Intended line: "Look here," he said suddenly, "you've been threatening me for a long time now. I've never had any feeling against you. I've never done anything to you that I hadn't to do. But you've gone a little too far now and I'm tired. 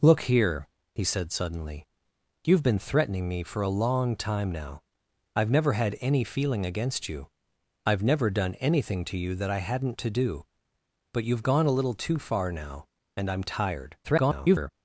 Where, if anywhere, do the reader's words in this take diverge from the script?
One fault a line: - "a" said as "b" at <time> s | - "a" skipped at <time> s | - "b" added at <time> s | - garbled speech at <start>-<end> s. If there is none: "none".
- garbled speech at 14.0-14.7 s